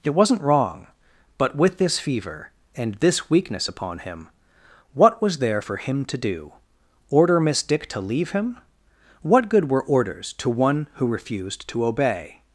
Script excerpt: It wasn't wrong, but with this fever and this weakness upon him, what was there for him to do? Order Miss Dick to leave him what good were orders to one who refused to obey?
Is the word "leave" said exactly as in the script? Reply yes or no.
yes